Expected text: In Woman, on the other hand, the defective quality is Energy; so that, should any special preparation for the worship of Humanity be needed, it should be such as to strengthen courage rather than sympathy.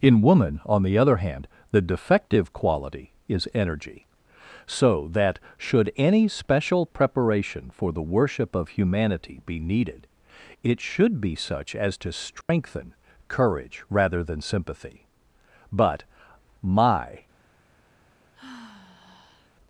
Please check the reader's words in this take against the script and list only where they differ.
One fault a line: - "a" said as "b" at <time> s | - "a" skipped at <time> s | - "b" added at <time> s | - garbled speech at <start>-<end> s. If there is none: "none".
- "But my" added at 15.7 s